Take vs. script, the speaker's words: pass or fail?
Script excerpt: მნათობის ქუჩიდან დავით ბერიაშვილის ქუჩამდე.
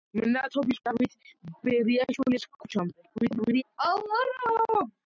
fail